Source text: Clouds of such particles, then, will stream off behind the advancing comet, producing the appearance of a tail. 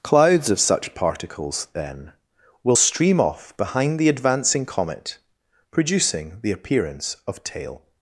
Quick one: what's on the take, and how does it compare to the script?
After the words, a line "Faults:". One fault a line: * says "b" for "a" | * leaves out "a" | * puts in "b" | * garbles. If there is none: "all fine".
Clouds of such particles, then, will stream off behind the advancing comet, producing the appearance of tail.
Faults:
* leaves out "a"